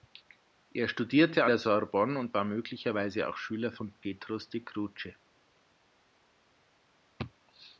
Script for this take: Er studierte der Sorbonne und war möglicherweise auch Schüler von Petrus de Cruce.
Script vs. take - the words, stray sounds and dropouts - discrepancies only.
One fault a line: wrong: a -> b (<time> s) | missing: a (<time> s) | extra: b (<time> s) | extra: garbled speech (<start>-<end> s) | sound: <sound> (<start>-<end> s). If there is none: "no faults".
no faults